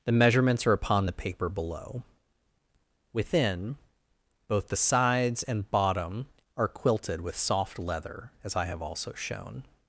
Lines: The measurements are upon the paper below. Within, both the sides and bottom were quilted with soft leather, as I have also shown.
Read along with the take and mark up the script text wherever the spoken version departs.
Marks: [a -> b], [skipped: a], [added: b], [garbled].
The measurements are upon the paper below. Within, both the sides and bottom [were -> are] quilted with soft leather, as I have also shown.